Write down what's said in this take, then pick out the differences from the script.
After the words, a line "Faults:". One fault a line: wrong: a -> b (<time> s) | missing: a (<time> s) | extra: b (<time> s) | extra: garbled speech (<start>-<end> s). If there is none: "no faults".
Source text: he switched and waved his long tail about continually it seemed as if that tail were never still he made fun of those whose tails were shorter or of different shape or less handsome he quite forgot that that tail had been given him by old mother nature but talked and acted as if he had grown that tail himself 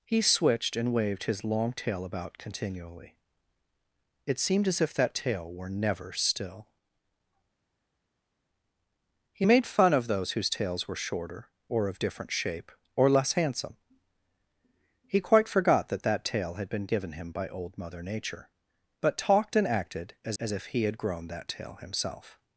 he switched and waved his long tail about continually it seemed as if that tail were never still he made fun of those whose tails were shorter or of different shape or less handsome he quite forgot that that tail had been given him by old mother nature but talked and acted as as if he had grown that tail himself
Faults:
extra: as (20.4 s)